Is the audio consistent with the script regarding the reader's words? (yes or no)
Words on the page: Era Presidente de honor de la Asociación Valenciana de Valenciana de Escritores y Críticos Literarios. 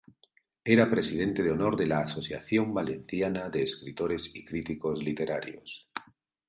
no